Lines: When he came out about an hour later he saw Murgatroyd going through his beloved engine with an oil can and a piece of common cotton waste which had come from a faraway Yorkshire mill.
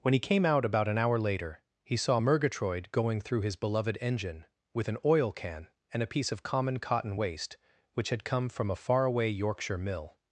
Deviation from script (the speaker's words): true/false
false